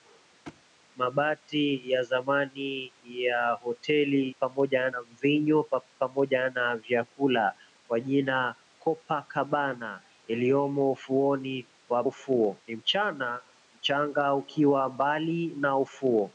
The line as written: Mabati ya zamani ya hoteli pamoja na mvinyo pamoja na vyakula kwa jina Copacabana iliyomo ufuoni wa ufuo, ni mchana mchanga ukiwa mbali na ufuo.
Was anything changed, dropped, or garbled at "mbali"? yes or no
no